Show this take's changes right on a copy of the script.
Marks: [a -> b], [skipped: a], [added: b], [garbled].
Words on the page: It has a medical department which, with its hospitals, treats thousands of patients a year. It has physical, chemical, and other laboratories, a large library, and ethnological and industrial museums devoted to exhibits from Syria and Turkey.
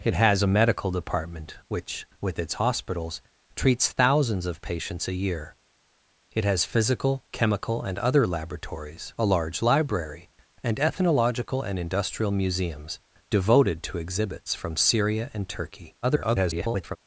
It has a medical department which, with its hospitals, treats thousands of patients a year. It has physical, chemical, and other laboratories, a large library, and ethnological and industrial museums devoted to exhibits from Syria and Turkey. [garbled]